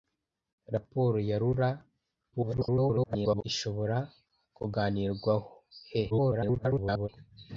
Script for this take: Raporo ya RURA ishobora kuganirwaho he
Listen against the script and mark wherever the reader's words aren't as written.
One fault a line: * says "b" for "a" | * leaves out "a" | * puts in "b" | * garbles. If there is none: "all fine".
* garbles
* garbles